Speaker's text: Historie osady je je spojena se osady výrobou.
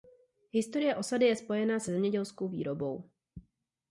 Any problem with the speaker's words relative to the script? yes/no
yes